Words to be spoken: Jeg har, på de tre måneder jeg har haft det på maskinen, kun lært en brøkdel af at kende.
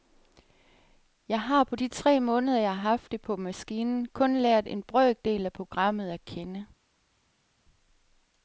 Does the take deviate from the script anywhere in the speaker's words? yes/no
yes